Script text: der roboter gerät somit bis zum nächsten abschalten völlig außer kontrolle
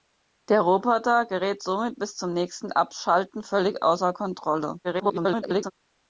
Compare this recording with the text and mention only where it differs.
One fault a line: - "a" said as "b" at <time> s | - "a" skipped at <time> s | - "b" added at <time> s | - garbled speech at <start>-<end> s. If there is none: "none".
- garbled speech at 4.8-5.7 s